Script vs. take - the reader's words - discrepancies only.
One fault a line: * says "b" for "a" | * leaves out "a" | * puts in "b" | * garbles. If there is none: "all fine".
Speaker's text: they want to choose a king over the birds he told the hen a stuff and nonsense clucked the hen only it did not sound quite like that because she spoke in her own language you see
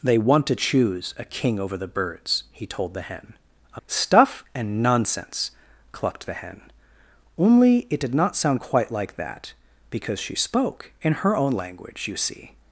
all fine